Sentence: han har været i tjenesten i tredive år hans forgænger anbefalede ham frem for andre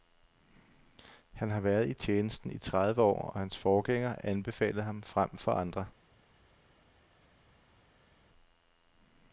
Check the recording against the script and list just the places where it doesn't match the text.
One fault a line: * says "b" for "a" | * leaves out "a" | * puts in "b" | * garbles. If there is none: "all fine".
* puts in "og"